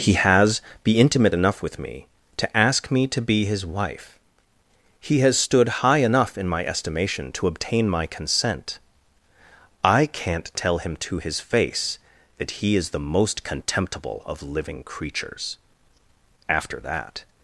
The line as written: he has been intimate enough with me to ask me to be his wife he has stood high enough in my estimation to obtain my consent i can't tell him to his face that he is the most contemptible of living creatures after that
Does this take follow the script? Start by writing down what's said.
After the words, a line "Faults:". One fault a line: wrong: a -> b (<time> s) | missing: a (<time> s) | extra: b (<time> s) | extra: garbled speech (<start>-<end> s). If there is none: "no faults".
he has be intimate enough with me to ask me to be his wife he has stood high enough in my estimation to obtain my consent i can't tell him to his face that he is the most contemptible of living creatures after that
Faults:
wrong: been -> be (0.8 s)